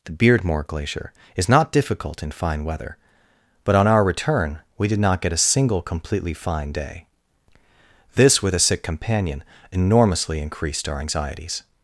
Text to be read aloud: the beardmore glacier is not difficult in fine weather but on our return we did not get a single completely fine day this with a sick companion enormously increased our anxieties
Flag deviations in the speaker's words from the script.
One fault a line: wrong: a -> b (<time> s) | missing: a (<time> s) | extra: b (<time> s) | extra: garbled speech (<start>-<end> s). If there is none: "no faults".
no faults